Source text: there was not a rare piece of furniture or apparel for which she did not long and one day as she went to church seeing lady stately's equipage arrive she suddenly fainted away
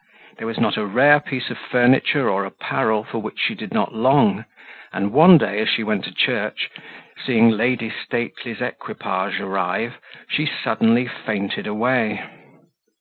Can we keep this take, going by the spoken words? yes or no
yes